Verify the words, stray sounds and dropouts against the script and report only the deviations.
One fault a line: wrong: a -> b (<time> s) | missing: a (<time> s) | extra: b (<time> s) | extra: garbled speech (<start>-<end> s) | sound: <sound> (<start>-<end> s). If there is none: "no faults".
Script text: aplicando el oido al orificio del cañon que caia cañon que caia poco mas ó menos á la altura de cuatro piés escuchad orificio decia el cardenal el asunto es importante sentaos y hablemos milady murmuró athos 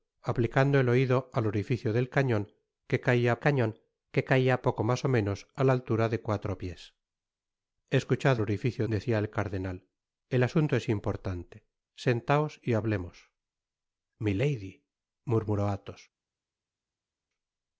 no faults